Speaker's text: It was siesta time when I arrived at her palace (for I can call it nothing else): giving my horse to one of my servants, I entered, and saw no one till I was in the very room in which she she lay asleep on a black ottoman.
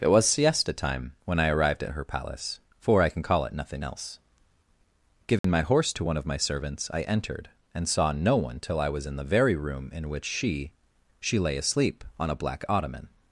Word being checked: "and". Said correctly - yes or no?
yes